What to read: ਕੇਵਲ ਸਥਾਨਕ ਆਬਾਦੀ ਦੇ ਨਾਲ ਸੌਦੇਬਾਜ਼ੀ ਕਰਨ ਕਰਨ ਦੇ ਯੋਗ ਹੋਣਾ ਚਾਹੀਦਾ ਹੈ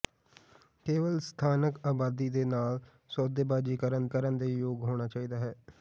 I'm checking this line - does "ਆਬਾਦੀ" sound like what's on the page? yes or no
yes